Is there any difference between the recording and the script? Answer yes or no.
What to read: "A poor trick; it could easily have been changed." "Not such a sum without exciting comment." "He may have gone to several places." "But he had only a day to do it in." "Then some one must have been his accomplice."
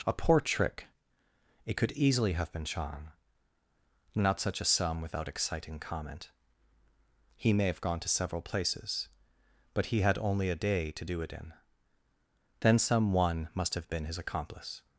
yes